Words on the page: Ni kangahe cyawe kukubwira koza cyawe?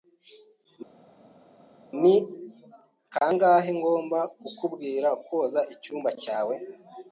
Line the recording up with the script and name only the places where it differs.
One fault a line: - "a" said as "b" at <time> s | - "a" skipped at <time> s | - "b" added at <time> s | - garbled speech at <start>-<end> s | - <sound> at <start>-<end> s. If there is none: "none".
- "cyawe" said as "ngomba" at 3.8 s
- "icyumba" added at 5.7 s